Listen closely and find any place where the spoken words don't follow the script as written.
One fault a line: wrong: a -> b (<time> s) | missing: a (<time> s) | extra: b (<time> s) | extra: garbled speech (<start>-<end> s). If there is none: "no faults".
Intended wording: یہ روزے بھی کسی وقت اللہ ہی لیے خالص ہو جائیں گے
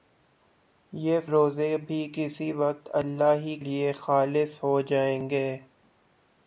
no faults